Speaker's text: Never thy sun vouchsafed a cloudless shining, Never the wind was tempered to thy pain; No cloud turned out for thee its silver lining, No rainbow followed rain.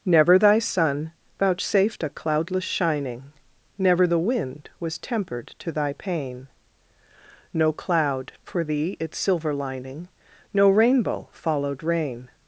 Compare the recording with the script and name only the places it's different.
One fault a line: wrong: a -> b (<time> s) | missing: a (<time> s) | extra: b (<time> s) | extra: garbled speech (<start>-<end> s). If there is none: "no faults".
missing: turned out (8.3 s)